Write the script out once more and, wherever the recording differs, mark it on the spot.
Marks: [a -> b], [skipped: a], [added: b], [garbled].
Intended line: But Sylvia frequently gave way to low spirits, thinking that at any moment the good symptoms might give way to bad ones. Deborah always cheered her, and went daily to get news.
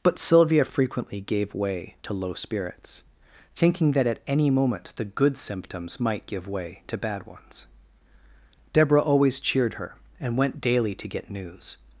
But Sylvia frequently gave way to low spirits, thinking that at any moment the good symptoms might give way to bad ones. Deborah always cheered her, and went daily to get news.